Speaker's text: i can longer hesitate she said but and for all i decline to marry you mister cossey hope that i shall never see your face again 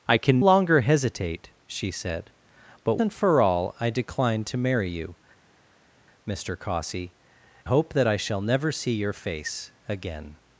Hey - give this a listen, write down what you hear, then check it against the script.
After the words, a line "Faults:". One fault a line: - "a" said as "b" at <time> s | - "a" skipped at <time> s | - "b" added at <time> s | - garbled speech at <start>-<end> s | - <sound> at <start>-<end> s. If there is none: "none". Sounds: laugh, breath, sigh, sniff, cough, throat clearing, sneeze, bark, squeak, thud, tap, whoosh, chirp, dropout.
i can longer hesitate she said but and for all i decline to marry you mister cossey hope that i shall never see your face again
Faults:
none